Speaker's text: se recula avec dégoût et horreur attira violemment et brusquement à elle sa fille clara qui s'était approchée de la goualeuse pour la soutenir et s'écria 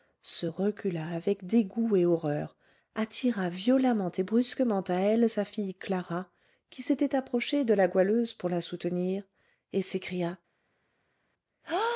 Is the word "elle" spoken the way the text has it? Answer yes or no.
yes